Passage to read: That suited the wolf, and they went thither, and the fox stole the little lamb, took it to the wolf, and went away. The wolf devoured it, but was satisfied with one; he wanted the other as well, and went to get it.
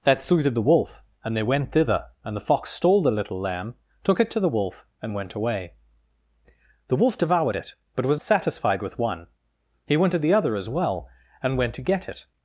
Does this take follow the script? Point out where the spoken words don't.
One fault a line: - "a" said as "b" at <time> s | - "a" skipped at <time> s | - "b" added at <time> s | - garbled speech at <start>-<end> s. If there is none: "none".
none